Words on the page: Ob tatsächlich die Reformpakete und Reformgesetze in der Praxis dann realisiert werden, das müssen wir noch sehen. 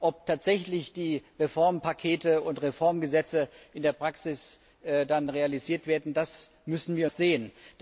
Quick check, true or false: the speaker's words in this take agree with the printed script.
false